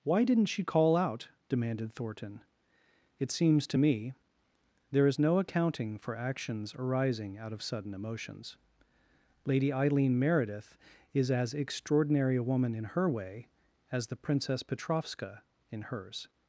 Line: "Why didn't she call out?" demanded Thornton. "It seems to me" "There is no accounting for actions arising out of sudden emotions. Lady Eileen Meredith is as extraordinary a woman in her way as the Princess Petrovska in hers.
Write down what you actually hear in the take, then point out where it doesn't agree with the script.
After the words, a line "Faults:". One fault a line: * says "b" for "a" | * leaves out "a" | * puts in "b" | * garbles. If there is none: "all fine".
"Why didn't she call out?" demanded Thornton. "It seems to me" "There is no accounting for actions arising out of sudden emotions. Lady Eileen Meredith is as extraordinary a woman in her way as the Princess Petrovska in hers.
Faults:
all fine